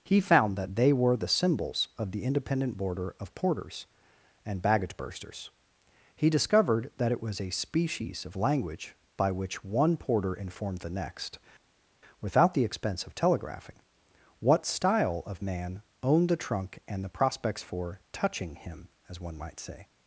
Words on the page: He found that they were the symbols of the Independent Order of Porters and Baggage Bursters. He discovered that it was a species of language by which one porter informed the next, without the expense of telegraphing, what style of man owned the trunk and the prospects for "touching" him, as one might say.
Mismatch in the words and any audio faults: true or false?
true